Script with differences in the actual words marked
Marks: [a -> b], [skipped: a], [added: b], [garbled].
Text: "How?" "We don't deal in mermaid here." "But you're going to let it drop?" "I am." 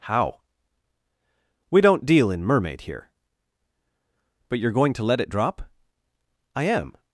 "How?" "We don't deal in mermaid here." "But you're going to let it drop?" "I am."